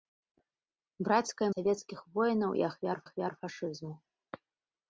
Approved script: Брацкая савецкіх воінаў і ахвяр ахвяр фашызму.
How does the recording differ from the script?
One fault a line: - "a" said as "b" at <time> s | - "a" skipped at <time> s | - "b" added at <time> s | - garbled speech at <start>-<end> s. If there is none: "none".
none